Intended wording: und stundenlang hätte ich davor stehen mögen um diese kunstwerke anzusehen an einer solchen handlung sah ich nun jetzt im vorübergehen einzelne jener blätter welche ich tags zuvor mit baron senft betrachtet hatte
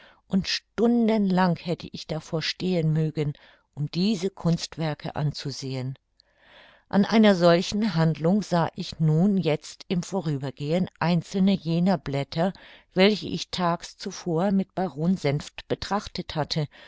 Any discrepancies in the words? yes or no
no